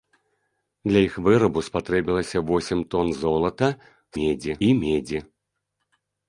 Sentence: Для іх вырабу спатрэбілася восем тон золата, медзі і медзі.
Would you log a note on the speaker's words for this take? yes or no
no